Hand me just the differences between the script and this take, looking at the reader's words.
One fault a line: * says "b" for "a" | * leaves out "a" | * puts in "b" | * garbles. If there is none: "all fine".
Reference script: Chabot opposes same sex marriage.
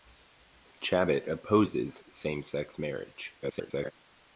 * garbles